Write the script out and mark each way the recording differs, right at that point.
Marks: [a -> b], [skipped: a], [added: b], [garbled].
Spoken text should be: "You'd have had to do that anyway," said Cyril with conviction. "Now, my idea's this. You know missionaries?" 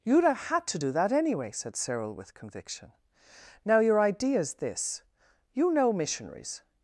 "You'd have had to do that anyway," said Cyril with conviction. "Now, [my -> your] idea's this. You know missionaries?"